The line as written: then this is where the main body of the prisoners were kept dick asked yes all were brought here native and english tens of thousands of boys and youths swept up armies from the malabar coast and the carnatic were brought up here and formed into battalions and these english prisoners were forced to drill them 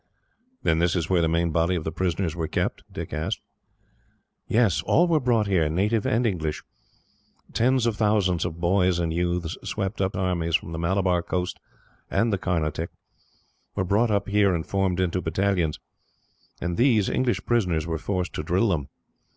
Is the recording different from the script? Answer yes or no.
no